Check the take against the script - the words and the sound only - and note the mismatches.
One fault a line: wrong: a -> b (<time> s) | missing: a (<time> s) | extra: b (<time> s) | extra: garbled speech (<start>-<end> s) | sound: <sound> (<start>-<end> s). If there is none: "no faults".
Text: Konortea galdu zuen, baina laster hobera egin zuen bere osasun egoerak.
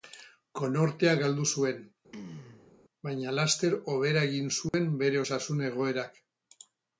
sound: throat clearing (2.1-2.7 s)
sound: dropout (4.7-4.7 s)